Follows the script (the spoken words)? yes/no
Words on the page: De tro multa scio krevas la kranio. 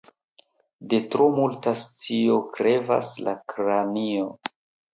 yes